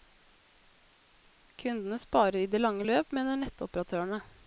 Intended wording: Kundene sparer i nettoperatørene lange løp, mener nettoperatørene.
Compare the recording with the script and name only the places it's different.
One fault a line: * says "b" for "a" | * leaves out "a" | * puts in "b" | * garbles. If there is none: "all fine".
* says "det" for "nettoperatørene"